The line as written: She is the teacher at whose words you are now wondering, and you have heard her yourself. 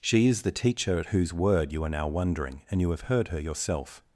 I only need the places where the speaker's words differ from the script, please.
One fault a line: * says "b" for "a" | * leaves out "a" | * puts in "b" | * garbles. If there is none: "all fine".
* says "word" for "words"